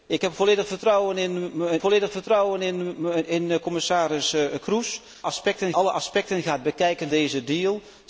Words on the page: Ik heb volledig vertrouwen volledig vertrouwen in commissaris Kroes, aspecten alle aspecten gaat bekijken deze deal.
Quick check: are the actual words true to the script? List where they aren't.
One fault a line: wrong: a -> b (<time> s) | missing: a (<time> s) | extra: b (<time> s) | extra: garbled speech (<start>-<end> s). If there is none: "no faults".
no faults